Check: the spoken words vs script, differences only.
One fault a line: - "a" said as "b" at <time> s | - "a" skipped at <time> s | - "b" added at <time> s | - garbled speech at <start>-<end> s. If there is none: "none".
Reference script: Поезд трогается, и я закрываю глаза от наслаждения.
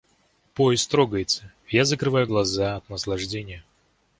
none